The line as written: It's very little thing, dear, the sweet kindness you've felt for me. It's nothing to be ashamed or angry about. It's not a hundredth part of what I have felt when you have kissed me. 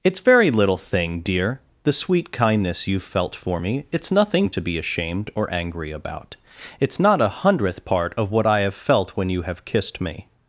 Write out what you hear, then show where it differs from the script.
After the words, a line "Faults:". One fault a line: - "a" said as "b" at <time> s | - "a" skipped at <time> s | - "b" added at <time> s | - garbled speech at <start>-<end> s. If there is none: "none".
It's very little thing, dear, the sweet kindness you've felt for me. It's nothing to be ashamed or angry about. It's not a hundredth part of what I have felt when you have kissed me.
Faults:
none